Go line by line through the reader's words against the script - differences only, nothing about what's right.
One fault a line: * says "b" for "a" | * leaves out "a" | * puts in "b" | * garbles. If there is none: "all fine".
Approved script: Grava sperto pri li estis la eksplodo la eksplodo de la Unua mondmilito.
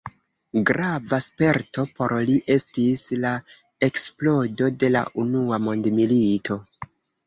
* says "por" for "pri"
* leaves out "la eksplodo"